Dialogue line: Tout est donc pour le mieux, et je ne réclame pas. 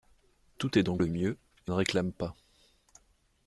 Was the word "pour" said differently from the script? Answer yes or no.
yes